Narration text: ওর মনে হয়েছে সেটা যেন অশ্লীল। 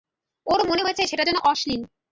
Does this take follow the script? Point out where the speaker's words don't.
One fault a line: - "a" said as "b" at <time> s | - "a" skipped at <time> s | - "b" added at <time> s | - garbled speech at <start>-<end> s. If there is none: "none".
none